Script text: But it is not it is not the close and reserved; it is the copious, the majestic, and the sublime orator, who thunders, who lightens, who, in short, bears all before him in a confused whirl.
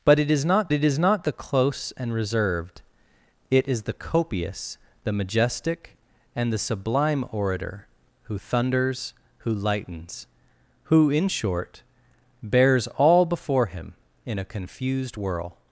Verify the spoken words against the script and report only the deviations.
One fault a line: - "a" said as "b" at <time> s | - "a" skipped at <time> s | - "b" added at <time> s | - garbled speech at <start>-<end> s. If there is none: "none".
none